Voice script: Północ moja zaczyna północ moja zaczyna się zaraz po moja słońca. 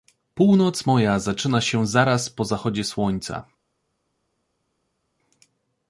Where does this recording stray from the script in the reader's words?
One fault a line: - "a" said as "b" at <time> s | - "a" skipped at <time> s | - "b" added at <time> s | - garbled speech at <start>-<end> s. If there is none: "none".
- "północ moja zaczyna" skipped at 1.6 s
- "moja" said as "zachodzie" at 2.5 s